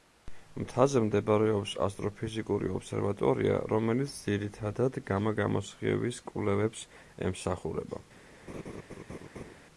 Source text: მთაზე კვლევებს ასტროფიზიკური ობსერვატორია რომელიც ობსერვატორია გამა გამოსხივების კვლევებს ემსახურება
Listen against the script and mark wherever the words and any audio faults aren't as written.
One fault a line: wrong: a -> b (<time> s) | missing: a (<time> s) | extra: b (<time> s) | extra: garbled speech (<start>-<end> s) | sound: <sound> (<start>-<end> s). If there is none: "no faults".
wrong: კვლევებს -> მდებარეობს (1.1 s)
wrong: ობსერვატორია -> ძირითადად (4.2 s)
sound: laugh (8.5-9.5 s)